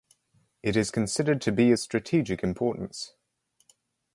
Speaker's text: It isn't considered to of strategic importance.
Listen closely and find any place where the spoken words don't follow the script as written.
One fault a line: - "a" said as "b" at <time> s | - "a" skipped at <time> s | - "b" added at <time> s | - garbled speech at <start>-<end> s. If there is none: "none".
- "isn't" said as "is" at 0.8 s
- "be" added at 1.5 s